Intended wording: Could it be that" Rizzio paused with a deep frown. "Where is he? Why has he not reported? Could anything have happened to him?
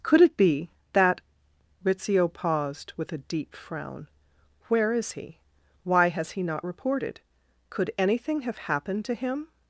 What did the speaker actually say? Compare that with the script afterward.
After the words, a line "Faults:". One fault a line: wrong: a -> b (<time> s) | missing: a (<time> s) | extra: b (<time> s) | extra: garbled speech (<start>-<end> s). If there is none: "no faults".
Could it be that" Rizzio paused with a deep frown. "Where is he? Why has he not reported? Could anything have happened to him?
Faults:
no faults